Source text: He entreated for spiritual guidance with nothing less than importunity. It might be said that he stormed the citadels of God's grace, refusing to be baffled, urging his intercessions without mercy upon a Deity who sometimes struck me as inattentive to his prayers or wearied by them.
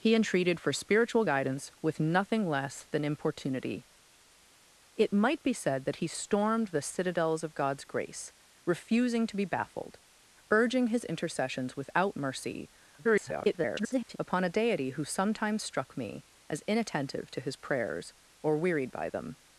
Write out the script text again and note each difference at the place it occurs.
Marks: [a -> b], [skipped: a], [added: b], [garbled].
He entreated for spiritual guidance with nothing less than importunity. It might be said that he stormed the citadels of God's grace, refusing to be baffled, urging his intercessions without mercy [garbled] upon a Deity who sometimes struck me as inattentive to his prayers or wearied by them.